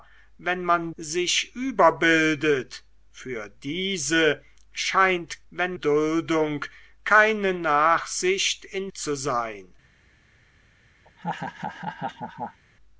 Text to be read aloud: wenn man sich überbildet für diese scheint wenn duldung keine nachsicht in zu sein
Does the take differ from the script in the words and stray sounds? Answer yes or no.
yes